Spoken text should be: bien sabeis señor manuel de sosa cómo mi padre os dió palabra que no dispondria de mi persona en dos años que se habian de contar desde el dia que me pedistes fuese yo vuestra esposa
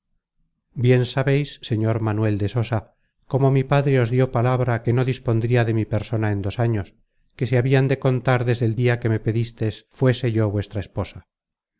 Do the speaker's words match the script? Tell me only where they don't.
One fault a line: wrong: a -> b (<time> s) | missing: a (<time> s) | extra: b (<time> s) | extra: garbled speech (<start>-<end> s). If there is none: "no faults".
no faults